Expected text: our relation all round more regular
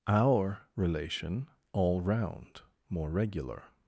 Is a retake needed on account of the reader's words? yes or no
no